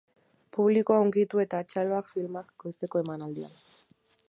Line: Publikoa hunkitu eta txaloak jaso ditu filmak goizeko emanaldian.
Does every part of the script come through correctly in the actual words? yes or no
no